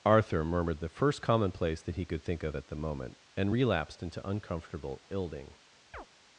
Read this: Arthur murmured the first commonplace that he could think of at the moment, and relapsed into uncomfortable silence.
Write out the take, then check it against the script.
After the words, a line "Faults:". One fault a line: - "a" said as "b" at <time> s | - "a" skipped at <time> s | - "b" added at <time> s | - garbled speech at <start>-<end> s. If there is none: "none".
Arthur murmured the first commonplace that he could think of at the moment, and relapsed into uncomfortable ilding.
Faults:
- "silence" said as "ilding" at 5.1 s